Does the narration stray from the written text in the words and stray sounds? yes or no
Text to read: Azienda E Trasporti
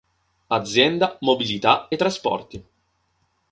yes